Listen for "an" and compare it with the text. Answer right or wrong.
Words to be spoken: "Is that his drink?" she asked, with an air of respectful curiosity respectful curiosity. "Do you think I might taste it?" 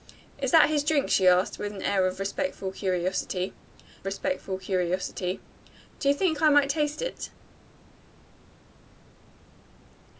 right